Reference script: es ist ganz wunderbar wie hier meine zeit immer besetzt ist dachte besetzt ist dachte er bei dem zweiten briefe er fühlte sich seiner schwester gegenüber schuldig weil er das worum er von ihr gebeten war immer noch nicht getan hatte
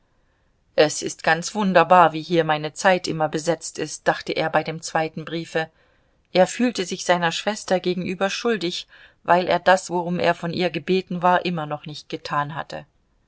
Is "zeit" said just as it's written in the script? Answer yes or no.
yes